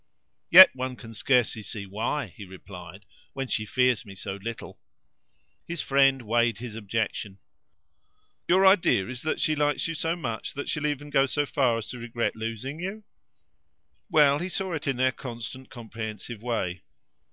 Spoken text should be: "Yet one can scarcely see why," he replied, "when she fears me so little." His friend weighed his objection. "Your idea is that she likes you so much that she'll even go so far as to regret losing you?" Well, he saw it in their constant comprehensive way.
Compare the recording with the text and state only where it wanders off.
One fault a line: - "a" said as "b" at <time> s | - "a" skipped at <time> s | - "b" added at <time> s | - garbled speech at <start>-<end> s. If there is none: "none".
none